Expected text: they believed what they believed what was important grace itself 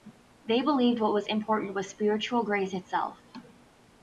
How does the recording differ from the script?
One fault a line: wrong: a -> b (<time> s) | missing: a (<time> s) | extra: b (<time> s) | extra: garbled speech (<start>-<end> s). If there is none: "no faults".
wrong: they believed what -> was important (1.1 s)
wrong: important -> spiritual (1.9 s)